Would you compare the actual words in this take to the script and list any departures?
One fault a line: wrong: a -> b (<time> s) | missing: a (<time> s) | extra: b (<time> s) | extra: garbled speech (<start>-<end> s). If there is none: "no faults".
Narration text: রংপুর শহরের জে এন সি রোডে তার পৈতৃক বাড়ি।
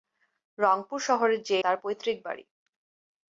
missing: এন সি রোডে (1.6 s)